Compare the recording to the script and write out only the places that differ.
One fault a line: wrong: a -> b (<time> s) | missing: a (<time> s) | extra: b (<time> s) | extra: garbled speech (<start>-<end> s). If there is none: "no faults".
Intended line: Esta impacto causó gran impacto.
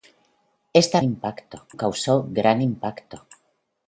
no faults